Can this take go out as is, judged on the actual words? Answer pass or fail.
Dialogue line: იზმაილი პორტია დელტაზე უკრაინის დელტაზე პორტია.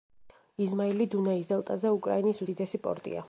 fail